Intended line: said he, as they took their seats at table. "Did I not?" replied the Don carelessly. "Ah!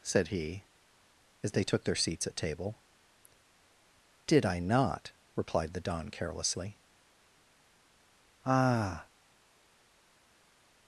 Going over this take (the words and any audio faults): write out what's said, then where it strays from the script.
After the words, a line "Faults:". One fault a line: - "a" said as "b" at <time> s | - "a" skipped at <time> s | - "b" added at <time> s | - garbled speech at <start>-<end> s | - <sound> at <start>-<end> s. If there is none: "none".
said he, as they took their seats at table. "Did I not?" replied the Don carelessly. "Ah!
Faults:
none